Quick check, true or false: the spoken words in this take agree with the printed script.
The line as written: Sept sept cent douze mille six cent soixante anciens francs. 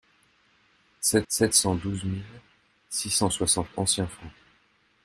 true